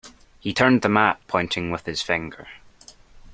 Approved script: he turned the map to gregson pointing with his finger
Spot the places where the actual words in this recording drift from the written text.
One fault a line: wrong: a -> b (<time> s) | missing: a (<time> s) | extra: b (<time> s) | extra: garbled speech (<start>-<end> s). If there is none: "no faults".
missing: to gregson (1.2 s)